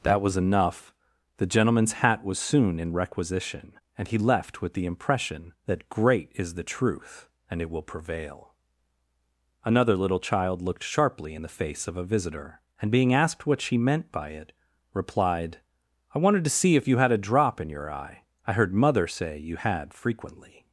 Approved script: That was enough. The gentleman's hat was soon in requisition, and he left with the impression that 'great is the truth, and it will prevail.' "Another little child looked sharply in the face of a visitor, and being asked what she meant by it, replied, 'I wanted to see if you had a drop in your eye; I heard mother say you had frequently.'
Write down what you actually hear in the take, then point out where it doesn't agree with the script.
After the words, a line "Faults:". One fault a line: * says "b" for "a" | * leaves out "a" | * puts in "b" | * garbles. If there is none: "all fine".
That was enough. The gentleman's hat was soon in requisition, and he left with the impression that 'great is the truth, and it will prevail.' "Another little child looked sharply in the face of a visitor, and being asked what she meant by it, replied, 'I wanted to see if you had a drop in your eye; I heard mother say you had frequently.'
Faults:
all fine